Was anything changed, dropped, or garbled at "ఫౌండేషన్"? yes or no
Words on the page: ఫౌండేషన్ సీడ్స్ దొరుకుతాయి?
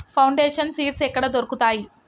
no